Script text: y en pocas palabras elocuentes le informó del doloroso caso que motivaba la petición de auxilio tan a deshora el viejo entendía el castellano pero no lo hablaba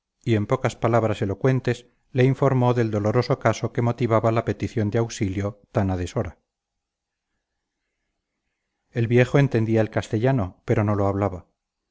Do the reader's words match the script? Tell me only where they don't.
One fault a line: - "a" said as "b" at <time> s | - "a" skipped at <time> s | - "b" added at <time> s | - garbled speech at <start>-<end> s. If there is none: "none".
none